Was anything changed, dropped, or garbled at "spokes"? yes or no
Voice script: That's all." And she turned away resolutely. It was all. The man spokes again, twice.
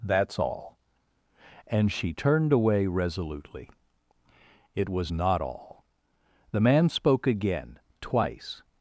yes